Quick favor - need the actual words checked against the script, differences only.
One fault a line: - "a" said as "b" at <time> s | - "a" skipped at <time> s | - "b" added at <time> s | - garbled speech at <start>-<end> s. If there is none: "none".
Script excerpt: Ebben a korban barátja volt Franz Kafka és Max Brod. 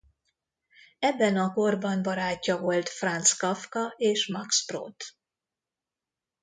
none